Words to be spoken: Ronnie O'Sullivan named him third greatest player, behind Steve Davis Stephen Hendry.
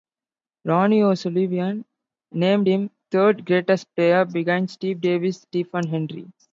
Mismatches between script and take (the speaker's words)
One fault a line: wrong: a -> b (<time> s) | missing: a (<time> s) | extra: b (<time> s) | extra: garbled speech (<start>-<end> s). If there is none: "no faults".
no faults